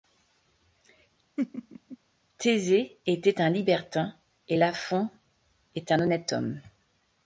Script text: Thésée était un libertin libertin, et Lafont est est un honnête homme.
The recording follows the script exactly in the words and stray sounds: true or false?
false